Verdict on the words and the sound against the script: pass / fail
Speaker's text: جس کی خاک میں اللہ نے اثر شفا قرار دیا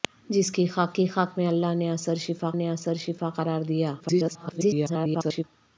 fail